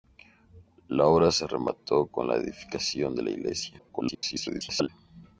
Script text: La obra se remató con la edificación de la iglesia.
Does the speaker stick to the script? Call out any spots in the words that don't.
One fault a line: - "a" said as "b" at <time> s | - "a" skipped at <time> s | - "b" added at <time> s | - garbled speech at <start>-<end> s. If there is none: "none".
- garbled speech at 3.8-4.9 s